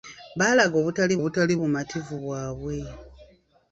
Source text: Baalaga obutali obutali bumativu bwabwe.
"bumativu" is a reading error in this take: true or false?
false